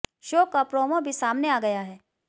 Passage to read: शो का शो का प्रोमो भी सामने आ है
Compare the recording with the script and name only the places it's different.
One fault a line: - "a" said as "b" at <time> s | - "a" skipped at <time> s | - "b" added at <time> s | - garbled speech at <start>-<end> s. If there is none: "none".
- "शो का" skipped at 0.6 s
- "गया" added at 1.6 s